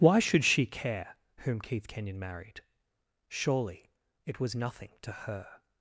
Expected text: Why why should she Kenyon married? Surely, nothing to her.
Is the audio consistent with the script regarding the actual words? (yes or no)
no